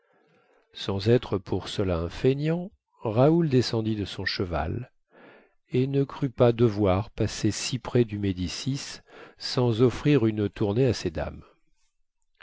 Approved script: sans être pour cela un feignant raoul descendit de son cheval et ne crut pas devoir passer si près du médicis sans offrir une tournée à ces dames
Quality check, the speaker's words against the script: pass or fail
pass